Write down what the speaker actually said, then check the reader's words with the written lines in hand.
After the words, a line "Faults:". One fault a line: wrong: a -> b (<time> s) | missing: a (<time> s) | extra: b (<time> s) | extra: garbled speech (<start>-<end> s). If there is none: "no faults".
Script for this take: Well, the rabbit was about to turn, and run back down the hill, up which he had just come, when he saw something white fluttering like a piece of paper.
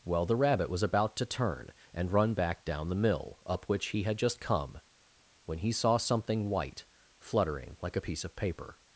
Well, the rabbit was about to turn, and run back down the mill, up which he had just come, when he saw something white fluttering like a piece of paper.
Faults:
wrong: hill -> mill (3.0 s)